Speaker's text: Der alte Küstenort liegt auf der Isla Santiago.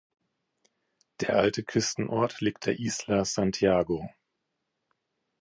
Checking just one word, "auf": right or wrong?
wrong